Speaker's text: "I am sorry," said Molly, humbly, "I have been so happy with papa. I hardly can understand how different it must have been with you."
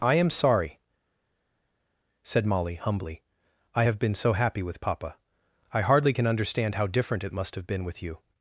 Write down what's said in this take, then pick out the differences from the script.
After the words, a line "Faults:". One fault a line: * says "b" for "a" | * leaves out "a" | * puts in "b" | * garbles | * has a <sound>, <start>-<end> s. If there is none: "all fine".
"I am sorry," said Molly, humbly, "I have been so happy with papa. I hardly can understand how different it must have been with you."
Faults:
all fine